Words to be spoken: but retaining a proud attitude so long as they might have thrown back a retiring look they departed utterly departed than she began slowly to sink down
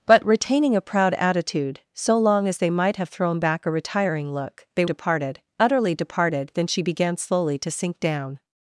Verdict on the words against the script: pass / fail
pass